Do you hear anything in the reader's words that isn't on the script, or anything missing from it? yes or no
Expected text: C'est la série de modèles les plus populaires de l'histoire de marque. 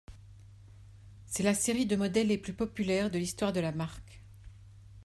yes